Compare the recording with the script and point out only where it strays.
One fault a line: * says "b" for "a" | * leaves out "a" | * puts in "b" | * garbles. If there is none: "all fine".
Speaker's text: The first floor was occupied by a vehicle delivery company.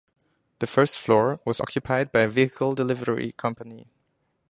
all fine